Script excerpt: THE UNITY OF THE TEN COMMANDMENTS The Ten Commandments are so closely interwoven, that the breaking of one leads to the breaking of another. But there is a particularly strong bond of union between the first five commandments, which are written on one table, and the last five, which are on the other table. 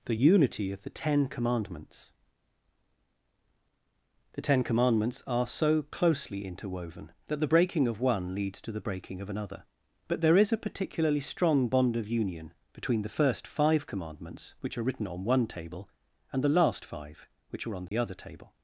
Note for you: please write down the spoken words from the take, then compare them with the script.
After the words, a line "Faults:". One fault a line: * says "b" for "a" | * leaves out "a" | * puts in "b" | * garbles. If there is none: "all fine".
THE UNITY OF THE TEN COMMANDMENTS The Ten Commandments are so closely interwoven, that the breaking of one leads to the breaking of another. But there is a particularly strong bond of union between the first five commandments, which are written on one table, and the last five, which are on the other table.
Faults:
all fine